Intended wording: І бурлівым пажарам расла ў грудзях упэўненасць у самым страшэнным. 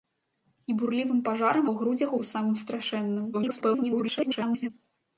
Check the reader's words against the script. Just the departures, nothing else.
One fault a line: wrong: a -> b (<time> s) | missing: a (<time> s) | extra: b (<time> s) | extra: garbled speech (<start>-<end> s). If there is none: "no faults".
missing: расла (1.6 s)
missing: упэўненасць (2.1 s)
extra: garbled speech (3.3-4.7 s)